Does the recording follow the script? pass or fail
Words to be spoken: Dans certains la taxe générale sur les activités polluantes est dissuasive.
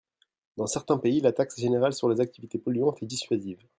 fail